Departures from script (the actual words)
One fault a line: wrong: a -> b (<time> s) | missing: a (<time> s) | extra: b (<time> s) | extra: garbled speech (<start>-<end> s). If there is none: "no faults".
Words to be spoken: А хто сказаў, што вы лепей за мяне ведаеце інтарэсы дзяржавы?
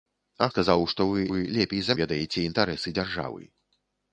missing: хто (0.5 s)
extra: вы (1.3 s)
missing: мяне (2.0 s)